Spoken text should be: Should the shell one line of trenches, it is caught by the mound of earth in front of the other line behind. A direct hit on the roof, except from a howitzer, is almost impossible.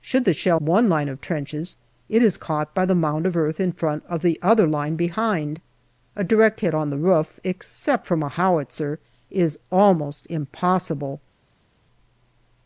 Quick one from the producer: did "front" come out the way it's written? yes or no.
yes